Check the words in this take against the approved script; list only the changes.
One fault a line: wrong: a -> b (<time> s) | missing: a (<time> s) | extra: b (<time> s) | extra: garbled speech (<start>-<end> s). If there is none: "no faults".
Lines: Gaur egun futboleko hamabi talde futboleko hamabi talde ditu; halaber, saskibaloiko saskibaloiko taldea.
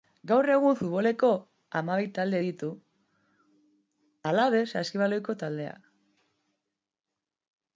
missing: futboleko hamabi talde (2.4 s)
missing: saskibaloiko (5.4 s)